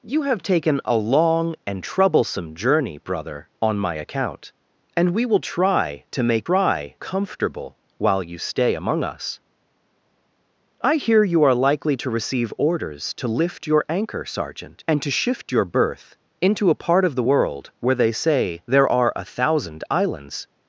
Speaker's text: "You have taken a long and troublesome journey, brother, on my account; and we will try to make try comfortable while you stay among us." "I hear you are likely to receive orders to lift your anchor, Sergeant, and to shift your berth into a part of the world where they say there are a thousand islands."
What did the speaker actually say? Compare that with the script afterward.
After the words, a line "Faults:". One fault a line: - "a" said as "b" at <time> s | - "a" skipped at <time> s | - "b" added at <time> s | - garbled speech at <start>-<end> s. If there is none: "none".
"You have taken a long and troublesome journey, brother, on my account; and we will try to make try comfortable while you stay among us." "I hear you are likely to receive orders to lift your anchor, Sergeant, and to shift your berth into a part of the world where they say there are a thousand islands."
Faults:
none